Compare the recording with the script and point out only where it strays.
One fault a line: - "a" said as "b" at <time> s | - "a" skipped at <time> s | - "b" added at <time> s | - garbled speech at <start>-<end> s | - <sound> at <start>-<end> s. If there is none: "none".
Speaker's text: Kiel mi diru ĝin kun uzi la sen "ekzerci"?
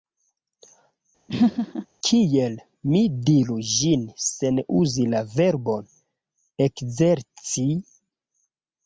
- laugh at 1.3-1.9 s
- "kun" said as "sen" at 4.3 s
- "sen" said as "verbon" at 5.4 s